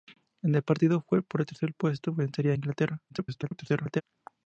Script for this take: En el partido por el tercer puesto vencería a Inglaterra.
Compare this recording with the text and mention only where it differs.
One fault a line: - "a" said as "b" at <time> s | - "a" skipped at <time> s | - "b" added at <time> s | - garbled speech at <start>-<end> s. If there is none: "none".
- garbled speech at 3.1-4.0 s